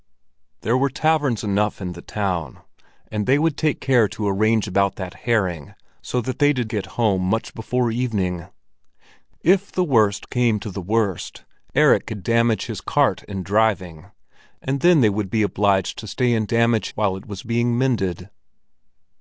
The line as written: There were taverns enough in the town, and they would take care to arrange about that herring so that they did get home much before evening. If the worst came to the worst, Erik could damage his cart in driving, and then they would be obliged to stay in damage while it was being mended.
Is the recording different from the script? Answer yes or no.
no